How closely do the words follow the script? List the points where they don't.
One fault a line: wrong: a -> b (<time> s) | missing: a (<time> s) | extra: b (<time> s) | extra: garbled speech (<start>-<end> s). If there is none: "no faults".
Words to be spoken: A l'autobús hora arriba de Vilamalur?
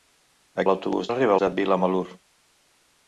no faults